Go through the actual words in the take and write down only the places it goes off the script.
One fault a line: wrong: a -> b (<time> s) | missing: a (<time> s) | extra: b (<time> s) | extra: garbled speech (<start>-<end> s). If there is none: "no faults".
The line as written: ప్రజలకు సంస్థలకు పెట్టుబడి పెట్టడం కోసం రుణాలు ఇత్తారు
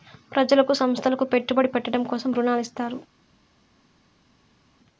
no faults